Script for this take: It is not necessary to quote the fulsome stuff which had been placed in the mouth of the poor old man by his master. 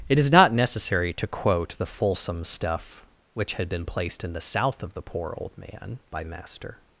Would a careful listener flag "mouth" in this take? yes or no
yes